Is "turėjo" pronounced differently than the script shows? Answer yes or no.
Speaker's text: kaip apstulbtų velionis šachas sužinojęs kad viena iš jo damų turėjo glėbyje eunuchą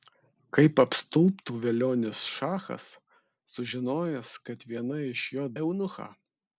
yes